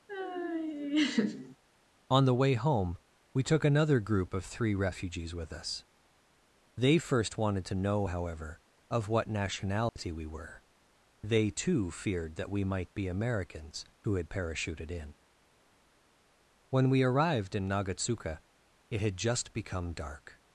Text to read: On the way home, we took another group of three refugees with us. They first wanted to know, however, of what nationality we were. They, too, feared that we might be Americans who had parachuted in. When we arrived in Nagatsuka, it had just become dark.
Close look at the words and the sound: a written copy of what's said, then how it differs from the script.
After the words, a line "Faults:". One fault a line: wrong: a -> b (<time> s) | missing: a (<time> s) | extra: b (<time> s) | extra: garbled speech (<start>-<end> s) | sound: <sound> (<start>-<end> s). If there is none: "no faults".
On the way home, we took another group of three refugees with us. They first wanted to know, however, of what nationality we were. They, too, feared that we might be Americans who had parachuted in. When we arrived in Nagatsuka, it had just become dark.
Faults:
sound: laugh (0.1-1.6 s)
sound: dropout (9.9-10.0 s)